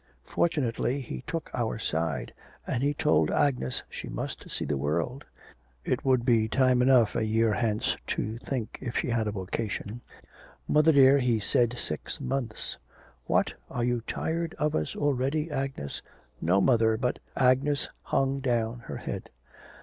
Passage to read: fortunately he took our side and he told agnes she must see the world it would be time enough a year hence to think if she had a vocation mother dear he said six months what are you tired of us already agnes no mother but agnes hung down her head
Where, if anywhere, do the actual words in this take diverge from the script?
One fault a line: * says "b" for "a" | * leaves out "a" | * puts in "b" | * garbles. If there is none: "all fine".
all fine